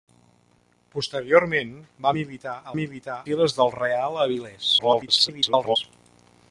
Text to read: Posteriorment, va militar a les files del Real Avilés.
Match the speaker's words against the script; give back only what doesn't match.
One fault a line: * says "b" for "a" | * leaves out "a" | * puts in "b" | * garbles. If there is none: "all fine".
* says "militar" for "les"
* garbles